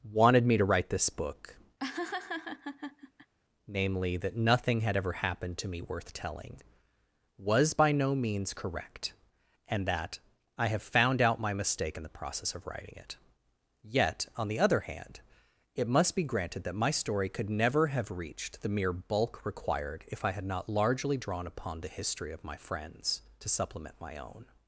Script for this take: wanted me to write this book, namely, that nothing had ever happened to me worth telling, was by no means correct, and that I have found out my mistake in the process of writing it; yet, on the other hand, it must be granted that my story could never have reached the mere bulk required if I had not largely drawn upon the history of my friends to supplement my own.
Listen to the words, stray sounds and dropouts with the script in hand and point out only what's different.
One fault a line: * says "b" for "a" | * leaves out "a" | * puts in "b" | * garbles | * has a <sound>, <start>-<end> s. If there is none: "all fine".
* has a laugh, 1.8-3.3 s